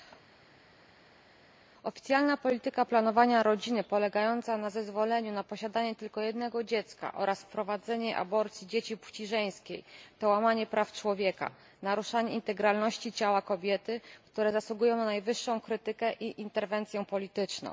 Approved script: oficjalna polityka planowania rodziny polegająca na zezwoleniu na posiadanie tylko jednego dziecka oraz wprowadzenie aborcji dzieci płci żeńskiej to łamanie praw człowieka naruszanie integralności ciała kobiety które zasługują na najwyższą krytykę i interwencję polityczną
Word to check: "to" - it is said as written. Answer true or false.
true